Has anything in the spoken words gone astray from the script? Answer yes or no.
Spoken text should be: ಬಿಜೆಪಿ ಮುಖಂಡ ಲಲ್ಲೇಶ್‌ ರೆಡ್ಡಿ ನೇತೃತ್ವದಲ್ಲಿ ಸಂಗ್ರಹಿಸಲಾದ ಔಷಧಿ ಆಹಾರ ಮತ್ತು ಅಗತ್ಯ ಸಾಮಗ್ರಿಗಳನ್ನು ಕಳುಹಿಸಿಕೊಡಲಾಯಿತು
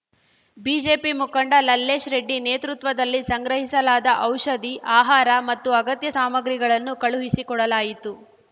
no